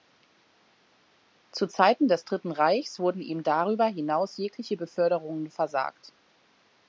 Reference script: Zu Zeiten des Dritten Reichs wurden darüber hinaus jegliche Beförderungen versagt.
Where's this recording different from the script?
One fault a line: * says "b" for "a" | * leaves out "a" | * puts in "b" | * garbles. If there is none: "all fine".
* puts in "ihm"